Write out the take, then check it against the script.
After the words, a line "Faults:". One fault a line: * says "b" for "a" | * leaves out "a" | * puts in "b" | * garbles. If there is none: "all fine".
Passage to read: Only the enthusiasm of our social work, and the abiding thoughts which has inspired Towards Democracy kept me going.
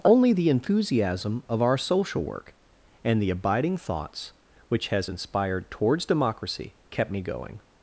Only the enthusiasm of our social work, and the abiding thoughts which has inspired Towards Democracy kept me going.
Faults:
all fine